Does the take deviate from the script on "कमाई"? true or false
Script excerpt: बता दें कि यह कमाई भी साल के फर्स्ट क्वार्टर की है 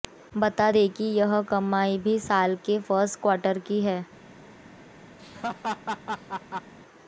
false